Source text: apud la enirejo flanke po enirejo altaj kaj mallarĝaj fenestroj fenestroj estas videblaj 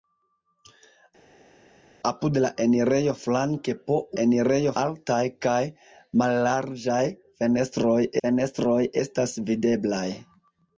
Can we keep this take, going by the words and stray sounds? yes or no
yes